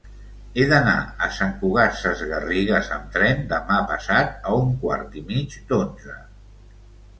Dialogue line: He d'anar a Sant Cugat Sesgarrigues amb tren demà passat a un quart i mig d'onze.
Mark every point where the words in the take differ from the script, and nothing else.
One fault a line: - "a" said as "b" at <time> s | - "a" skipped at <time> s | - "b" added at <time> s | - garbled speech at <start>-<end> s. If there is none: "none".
none